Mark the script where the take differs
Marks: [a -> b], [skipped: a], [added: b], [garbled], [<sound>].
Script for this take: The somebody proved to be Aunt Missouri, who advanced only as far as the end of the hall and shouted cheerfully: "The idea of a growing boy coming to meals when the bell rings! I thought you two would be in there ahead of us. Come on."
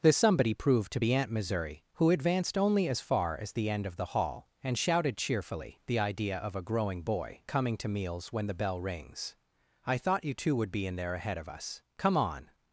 The somebody proved to be Aunt Missouri, who advanced only as far as the end of the hall and shouted cheerfully: "The idea of a growing boy coming to meals when the bell rings! I thought you two would be in there ahead of us. Come on."